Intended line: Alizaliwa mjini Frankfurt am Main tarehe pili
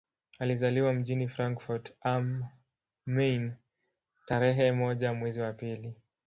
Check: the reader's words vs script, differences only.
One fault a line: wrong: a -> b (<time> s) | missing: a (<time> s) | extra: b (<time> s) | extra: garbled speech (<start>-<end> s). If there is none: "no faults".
extra: moja mwezi wa (4.7 s)